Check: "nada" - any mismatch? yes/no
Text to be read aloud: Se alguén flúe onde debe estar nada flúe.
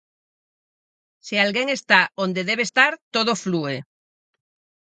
yes